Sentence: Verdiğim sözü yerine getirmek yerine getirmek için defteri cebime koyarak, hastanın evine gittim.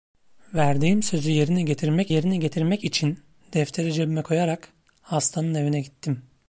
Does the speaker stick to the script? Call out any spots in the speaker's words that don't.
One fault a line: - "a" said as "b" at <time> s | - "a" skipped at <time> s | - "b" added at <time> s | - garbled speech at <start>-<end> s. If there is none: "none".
none